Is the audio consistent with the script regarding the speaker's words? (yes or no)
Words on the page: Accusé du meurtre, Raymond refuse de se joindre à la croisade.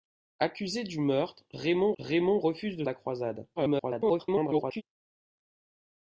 no